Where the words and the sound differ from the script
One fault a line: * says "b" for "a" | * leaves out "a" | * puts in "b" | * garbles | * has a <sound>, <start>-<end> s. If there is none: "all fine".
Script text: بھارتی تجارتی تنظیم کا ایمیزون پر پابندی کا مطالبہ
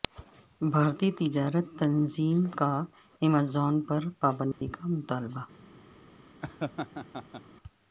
* has a dropout, 4.5-4.6 s
* has a laugh, 6.4-7.4 s